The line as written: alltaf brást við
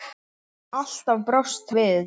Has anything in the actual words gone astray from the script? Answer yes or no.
no